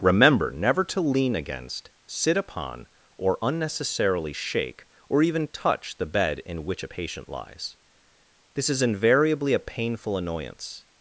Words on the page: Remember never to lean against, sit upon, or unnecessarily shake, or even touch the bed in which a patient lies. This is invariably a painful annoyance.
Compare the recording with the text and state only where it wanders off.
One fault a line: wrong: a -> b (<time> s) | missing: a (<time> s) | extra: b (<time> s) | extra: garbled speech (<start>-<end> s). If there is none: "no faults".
no faults